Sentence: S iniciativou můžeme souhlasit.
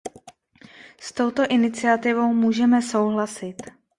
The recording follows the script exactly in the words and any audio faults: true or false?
false